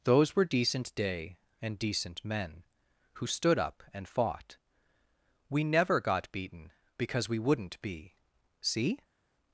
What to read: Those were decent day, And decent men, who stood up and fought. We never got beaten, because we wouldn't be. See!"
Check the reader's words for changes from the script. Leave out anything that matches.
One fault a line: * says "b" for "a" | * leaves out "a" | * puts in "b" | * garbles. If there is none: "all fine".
all fine